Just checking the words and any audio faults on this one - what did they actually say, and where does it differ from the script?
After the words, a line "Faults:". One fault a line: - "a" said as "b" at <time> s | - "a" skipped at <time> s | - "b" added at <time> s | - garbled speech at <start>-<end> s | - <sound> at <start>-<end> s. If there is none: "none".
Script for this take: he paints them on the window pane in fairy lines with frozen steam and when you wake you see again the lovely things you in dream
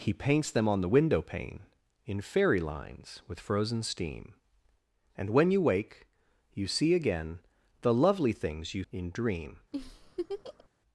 he paints them on the window pane in fairy lines with frozen steam and when you wake you see again the lovely things you in dream
Faults:
- laugh at 9.7-10.7 s